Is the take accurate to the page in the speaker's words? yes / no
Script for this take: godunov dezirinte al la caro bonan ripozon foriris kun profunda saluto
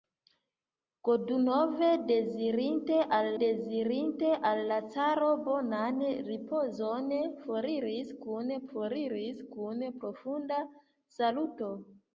no